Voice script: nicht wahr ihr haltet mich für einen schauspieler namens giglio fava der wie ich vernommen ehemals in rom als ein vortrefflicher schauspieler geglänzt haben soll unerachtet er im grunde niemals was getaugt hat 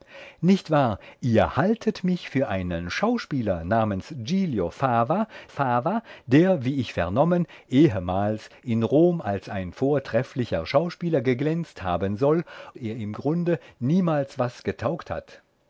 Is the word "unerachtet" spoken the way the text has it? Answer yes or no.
no